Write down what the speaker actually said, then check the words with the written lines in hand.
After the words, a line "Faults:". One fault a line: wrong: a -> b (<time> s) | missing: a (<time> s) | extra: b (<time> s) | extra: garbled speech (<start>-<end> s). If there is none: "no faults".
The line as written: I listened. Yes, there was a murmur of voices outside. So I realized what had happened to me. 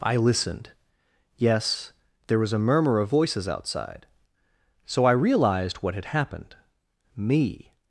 I listened. Yes, there was a murmur of voices outside. So I realized what had happened me.
Faults:
missing: to (6.5 s)